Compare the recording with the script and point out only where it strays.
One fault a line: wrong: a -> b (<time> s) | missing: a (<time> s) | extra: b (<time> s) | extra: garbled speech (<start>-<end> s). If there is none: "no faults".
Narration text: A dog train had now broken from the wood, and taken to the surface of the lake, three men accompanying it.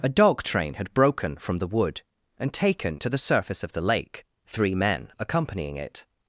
missing: now (0.9 s)